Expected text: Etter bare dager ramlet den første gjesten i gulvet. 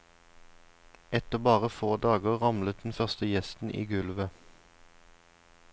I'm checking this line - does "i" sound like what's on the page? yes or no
yes